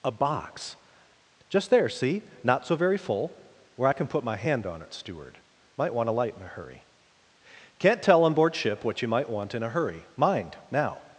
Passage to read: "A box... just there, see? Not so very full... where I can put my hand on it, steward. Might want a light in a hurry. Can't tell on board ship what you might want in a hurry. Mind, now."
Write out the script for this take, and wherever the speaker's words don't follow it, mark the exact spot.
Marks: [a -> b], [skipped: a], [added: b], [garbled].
"A box... just there, see? Not so very full... where I can put my hand on it, steward. Might want a light in a hurry. Can't tell on board ship what you might want in a hurry. Mind, now."